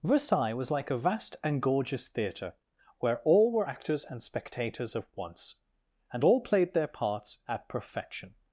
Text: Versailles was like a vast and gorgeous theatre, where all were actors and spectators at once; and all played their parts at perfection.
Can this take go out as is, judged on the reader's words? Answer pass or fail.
pass